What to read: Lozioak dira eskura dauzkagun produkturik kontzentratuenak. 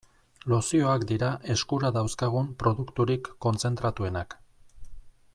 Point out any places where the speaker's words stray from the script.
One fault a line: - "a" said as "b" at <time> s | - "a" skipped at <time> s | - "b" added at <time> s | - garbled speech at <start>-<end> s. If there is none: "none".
none